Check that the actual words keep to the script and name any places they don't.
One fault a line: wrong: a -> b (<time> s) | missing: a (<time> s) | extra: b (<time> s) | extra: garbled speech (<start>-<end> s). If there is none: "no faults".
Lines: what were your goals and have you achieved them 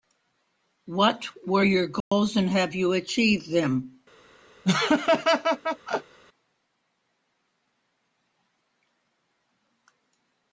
no faults